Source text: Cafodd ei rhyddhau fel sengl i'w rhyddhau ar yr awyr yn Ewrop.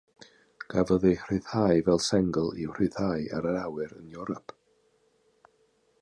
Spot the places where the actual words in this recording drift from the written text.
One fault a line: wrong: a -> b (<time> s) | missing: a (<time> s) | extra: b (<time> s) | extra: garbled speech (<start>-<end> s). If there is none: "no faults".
no faults